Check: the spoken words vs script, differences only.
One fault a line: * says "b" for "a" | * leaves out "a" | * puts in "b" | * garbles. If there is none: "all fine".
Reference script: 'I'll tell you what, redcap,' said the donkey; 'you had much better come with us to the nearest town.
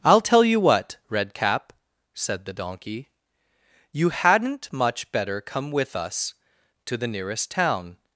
* says "hadn't" for "had"